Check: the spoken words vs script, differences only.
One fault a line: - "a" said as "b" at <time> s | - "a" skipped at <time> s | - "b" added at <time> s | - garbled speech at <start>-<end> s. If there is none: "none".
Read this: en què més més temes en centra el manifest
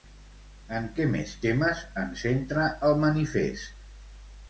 - "més" skipped at 1.4 s